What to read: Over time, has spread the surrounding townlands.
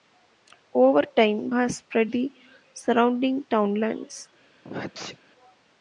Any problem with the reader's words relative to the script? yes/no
no